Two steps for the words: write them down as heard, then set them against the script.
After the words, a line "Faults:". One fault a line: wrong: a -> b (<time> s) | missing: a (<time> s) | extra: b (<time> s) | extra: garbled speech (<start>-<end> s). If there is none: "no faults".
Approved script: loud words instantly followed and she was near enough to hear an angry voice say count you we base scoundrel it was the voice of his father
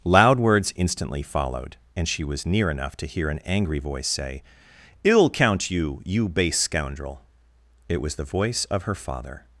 loud words instantly followed and she was near enough to hear an angry voice say ill count you you base scoundrel it was the voice of her father
Faults:
extra: ill (5.0 s)
wrong: we -> you (6.0 s)
wrong: his -> her (8.8 s)